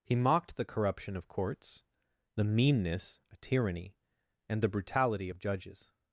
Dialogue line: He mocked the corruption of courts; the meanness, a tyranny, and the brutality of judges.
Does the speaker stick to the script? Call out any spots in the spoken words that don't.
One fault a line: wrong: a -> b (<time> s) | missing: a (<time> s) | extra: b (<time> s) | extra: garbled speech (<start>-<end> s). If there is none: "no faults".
no faults